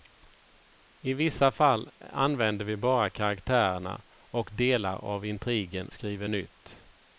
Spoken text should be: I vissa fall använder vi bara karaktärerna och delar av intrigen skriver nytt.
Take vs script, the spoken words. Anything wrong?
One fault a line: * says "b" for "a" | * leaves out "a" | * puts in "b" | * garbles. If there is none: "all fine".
all fine